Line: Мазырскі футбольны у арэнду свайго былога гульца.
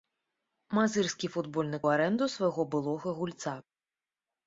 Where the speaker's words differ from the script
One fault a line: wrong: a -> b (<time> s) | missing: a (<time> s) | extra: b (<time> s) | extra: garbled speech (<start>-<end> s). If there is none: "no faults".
no faults